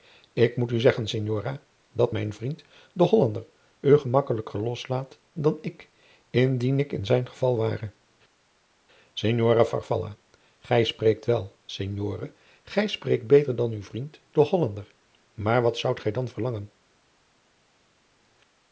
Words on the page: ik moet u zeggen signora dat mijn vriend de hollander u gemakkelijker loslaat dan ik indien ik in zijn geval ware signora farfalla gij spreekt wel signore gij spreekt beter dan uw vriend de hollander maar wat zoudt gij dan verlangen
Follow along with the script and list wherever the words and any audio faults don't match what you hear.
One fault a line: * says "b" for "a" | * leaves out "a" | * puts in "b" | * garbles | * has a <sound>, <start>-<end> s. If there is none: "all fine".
all fine